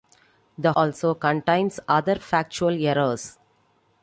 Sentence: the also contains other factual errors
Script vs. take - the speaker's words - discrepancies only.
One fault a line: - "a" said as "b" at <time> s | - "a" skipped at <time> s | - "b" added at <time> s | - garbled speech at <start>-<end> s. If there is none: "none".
none